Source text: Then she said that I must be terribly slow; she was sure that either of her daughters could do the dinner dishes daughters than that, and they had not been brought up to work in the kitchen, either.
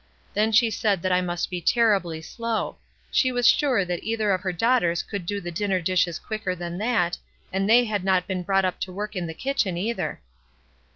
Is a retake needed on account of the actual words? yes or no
yes